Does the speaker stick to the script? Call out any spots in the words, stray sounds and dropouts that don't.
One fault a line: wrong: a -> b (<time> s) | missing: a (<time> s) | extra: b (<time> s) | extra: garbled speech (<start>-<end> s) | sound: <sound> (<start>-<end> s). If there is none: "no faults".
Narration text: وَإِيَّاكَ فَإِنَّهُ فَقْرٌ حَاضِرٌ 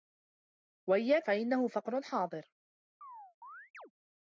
sound: chirp (3.0-3.9 s)